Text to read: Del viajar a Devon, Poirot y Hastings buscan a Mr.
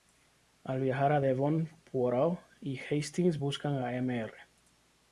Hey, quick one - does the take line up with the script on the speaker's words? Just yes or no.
no